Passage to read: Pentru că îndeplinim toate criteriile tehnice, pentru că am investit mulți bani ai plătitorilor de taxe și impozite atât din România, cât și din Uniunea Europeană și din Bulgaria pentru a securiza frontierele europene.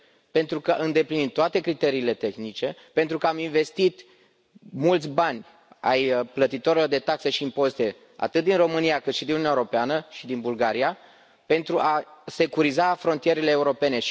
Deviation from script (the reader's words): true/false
false